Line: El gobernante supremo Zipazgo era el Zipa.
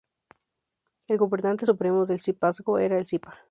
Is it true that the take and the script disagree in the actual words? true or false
true